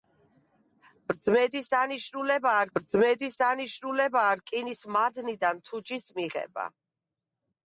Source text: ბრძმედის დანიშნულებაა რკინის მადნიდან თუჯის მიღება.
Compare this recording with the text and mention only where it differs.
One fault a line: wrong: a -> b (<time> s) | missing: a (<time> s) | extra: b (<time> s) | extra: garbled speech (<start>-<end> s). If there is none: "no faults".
extra: ბრძმედის დანიშნულებაა (2.8 s)